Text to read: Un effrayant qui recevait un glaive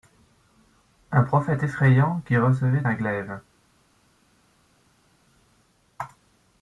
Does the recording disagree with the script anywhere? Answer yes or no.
yes